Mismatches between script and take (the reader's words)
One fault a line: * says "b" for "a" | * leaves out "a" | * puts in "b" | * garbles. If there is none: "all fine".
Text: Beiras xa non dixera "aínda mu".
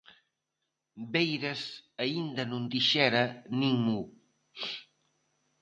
* says "aínda" for "xa"
* says "nin" for "aínda"